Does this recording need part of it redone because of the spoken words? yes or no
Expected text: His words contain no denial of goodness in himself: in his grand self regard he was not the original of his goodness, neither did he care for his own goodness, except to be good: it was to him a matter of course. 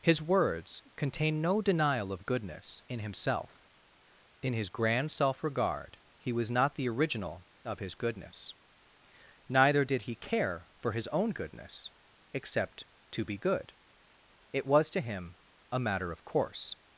no